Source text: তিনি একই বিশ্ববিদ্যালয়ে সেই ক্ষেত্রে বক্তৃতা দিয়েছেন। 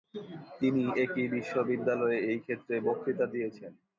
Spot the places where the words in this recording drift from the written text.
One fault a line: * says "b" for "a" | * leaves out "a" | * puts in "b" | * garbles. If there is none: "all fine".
* says "এই" for "সেই"